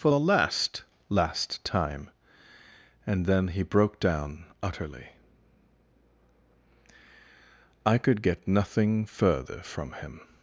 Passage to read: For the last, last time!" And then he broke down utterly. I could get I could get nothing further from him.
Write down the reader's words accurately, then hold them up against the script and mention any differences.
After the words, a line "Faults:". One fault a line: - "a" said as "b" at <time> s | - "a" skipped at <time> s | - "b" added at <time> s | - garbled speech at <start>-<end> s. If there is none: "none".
For the last, last time!" And then he broke down utterly. I could get nothing further from him.
Faults:
- "I could get" skipped at 8.5 s